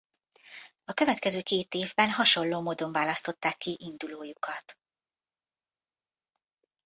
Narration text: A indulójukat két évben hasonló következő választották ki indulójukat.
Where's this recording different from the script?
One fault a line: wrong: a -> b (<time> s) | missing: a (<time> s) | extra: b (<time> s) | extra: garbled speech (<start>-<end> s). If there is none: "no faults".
wrong: indulójukat -> következő (0.9 s)
wrong: következő -> módon (2.6 s)